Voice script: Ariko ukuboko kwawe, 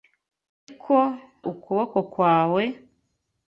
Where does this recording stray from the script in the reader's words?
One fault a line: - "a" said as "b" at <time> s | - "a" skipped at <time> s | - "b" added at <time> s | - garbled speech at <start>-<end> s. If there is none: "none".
none